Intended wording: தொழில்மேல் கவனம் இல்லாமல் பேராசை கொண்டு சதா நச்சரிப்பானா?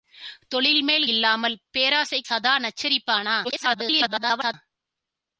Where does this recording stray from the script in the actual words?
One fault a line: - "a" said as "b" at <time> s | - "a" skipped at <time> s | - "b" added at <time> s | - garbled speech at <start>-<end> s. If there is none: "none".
- "கவனம்" skipped at 1.1 s
- "கொண்டு" skipped at 2.2 s
- garbled speech at 3.4-4.5 s